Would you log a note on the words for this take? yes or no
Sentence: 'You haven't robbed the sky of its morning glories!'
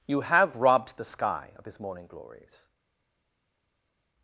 yes